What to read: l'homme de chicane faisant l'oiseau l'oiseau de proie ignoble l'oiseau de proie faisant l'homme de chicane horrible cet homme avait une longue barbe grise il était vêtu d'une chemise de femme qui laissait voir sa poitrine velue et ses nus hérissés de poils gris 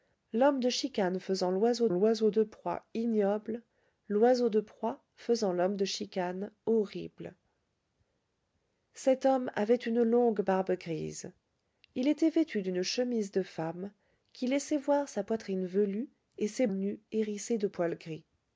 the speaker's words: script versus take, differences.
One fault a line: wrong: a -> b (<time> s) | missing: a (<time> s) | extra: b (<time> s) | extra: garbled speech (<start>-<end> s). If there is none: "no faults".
no faults